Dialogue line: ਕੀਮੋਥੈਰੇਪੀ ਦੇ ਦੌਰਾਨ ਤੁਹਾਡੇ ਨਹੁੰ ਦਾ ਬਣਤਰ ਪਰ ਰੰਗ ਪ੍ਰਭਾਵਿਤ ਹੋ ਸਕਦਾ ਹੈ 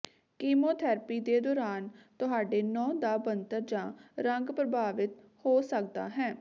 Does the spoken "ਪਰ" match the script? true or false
false